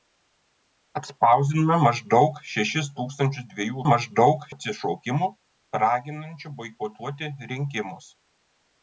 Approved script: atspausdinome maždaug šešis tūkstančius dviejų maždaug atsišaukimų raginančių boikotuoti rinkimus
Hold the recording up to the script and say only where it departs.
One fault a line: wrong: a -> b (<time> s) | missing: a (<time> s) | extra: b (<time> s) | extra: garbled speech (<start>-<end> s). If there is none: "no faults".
no faults